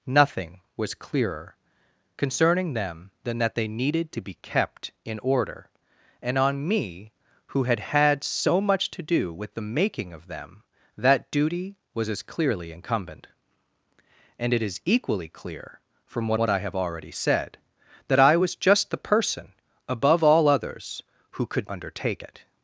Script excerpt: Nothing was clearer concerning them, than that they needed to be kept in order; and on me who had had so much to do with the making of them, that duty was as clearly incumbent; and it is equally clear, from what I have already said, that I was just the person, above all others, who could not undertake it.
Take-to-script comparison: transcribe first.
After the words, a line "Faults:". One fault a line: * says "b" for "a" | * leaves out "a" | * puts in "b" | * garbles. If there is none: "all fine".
Nothing was clearer concerning them, than that they needed to be kept in order; and on me who had had so much to do with the making of them, that duty was as clearly incumbent; and it is equally clear, from what what I have already said, that I was just the person, above all others, who could undertake it.
Faults:
* puts in "what"
* leaves out "not"